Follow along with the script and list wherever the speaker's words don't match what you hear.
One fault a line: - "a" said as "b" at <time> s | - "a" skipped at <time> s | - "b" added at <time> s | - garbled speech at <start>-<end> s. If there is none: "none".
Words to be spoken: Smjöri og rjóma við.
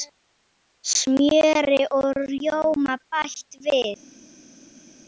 - "bætt" added at 3.1 s